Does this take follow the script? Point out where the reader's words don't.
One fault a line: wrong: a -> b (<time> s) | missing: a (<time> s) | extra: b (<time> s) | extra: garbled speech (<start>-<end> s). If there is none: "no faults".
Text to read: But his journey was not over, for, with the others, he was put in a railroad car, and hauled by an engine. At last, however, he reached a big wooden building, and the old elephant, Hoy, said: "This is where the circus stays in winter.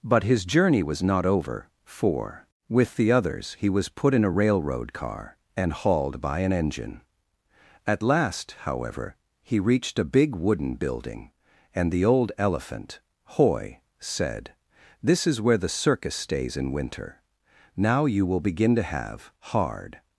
extra: Now you will begin to have hard (17.8 s)